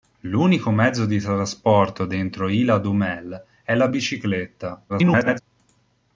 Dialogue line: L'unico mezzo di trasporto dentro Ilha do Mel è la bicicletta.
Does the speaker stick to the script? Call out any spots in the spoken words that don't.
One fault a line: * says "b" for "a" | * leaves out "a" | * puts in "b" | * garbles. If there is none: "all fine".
* garbles